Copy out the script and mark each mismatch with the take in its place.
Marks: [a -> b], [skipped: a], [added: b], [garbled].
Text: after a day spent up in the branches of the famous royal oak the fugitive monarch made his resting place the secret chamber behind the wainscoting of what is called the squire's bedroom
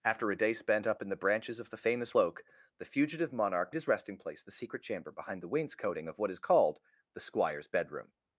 after a day spent up in the branches of the famous [skipped: royal] oak the fugitive monarch [skipped: made] his resting place the secret chamber behind the wainscoting of what is called the squire's bedroom